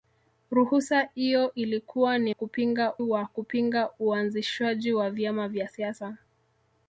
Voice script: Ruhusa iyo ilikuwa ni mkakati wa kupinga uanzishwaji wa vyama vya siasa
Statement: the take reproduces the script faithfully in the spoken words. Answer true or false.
false